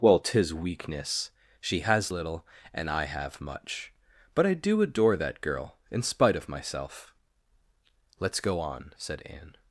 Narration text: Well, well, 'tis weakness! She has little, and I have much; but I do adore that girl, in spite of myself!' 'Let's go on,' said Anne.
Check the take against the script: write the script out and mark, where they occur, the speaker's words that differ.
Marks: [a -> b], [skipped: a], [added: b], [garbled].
Well, [skipped: well,] 'tis weakness! She has little, and I have much; but I do adore that girl, in spite of myself!' 'Let's go on,' said Anne.